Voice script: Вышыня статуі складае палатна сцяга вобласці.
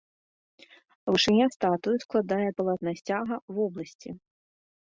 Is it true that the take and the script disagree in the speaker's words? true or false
false